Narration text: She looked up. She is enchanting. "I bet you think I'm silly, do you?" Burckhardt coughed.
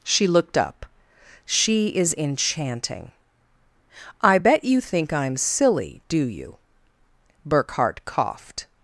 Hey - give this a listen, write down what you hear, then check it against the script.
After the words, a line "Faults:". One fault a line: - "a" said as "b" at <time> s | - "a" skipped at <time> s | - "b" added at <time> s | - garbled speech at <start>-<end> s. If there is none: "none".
She looked up. She is enchanting. "I bet you think I'm silly, do you?" Burckhardt coughed.
Faults:
none